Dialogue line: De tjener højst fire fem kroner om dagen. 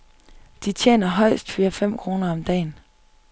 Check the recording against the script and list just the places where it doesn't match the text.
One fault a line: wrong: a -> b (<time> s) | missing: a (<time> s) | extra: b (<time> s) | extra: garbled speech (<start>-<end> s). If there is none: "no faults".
no faults